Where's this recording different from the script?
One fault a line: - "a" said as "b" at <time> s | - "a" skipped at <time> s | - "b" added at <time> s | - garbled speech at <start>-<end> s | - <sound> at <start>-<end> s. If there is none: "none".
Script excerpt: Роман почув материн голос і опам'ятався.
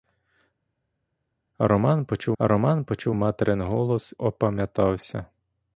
- "роман почув" added at 2.4 s
- "і" skipped at 4.1 s